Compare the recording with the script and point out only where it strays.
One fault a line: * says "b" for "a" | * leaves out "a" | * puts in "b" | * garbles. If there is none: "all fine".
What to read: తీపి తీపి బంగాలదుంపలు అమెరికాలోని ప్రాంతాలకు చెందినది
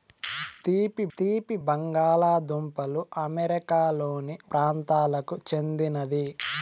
all fine